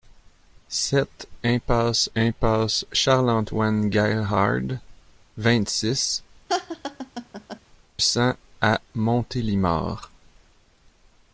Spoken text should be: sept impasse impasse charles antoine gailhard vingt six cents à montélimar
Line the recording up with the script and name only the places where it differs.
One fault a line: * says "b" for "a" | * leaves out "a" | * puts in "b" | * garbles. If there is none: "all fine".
all fine